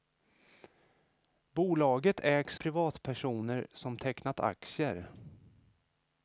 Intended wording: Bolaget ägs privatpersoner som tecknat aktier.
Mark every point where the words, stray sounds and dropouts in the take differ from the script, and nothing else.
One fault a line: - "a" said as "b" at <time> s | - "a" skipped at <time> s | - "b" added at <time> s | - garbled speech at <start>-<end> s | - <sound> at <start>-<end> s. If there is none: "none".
none